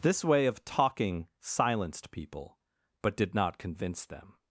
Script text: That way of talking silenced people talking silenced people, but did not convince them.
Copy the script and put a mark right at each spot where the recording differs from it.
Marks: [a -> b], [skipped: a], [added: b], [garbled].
[That -> This] way of talking silenced people [skipped: talking silenced people,] but did not convince them.